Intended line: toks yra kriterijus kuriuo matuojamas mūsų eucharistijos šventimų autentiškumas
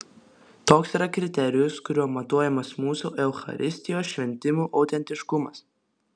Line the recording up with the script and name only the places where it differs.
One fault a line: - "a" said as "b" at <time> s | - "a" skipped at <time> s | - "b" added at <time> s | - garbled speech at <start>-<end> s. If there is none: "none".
none